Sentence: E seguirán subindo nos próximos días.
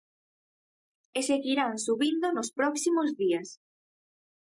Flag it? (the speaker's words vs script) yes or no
no